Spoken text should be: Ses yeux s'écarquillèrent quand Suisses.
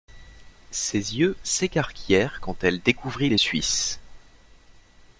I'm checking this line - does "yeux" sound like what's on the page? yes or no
yes